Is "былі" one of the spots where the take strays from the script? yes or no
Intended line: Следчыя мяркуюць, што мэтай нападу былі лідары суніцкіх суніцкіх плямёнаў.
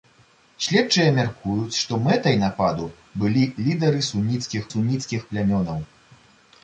no